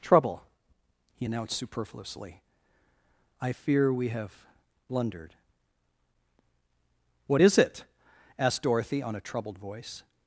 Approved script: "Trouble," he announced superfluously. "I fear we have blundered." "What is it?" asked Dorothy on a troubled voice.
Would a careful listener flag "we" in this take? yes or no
no